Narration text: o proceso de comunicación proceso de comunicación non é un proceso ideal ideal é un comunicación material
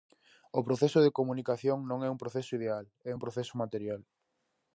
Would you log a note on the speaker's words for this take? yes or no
yes